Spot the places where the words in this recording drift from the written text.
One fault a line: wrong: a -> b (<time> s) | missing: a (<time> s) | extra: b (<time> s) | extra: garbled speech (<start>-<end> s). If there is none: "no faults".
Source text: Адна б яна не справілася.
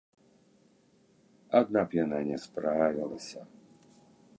no faults